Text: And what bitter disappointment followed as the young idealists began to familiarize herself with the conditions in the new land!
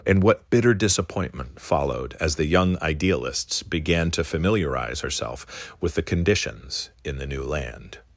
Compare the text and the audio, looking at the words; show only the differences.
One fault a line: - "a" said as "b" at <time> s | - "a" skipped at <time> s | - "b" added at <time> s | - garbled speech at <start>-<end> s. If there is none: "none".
none